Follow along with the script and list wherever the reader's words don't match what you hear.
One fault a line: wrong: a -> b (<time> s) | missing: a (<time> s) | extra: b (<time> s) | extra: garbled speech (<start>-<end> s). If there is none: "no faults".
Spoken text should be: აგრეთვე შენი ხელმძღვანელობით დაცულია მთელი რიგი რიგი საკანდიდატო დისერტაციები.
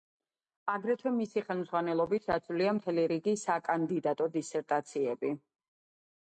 wrong: შენი -> მისი (1.2 s)
missing: რიგი (3.3 s)